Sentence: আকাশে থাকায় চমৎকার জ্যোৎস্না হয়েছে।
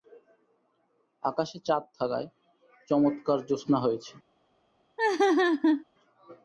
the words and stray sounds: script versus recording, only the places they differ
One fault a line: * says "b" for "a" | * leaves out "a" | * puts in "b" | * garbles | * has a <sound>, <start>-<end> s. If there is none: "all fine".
* puts in "চাঁদ"
* has a laugh, 5.0-5.8 s